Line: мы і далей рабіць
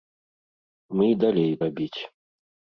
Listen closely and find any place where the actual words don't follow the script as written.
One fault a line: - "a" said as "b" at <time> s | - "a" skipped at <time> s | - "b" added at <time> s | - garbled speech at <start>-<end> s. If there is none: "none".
none